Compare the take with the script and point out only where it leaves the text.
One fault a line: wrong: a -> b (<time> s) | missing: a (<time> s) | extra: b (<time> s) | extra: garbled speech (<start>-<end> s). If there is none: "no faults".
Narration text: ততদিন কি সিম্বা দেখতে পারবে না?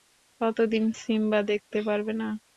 missing: কি (0.9 s)